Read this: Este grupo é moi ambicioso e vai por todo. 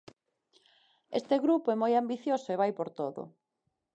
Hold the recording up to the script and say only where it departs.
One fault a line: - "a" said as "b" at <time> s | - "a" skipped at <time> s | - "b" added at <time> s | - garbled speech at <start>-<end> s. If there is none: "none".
none